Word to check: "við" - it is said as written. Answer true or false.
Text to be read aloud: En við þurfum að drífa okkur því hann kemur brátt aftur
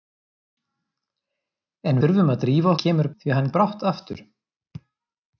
false